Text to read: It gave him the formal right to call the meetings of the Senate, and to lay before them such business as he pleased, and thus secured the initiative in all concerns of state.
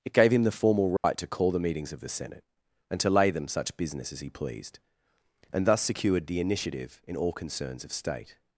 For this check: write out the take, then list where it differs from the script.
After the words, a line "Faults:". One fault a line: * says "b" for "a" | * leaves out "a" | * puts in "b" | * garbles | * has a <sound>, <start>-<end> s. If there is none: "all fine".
It gave him the formal right to call the meetings of the Senate, and to lay them such business as he pleased, and thus secured the initiative in all concerns of state.
Faults:
* has a dropout, 1.0-1.0 s
* leaves out "before"